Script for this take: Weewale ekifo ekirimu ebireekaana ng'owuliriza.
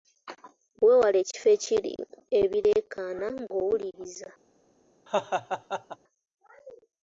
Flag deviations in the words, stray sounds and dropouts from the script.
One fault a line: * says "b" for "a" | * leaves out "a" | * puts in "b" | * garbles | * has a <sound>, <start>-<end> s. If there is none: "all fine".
* has a laugh, 5.1-6.0 s